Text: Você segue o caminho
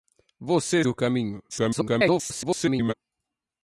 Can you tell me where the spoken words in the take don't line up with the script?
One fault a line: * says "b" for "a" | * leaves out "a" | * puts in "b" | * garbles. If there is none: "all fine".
* leaves out "segue"
* garbles